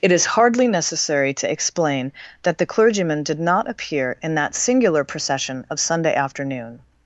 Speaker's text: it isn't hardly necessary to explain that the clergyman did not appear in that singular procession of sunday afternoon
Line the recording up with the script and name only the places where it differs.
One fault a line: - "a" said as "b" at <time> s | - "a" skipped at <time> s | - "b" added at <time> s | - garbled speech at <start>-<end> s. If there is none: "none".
- "isn't" said as "is" at 0.1 s